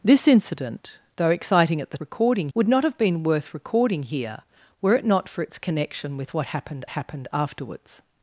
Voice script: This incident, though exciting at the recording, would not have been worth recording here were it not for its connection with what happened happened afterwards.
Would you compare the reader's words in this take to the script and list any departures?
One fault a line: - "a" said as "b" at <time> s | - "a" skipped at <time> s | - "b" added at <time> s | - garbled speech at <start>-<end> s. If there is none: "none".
none